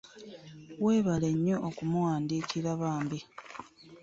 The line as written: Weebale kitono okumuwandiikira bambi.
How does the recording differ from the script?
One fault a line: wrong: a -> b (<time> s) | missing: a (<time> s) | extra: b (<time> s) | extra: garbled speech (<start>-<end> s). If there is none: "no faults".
wrong: kitono -> nnyo (1.3 s)